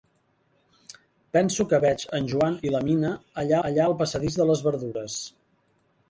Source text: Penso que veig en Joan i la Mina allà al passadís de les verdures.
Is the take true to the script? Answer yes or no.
no